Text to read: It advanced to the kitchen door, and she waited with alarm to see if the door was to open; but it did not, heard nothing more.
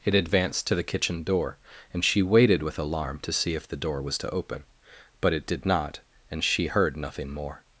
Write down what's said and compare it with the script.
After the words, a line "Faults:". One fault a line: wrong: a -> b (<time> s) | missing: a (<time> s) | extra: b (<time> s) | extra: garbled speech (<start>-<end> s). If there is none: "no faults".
It advanced to the kitchen door, and she waited with alarm to see if the door was to open; but it did not, and she heard nothing more.
Faults:
extra: and she (6.3 s)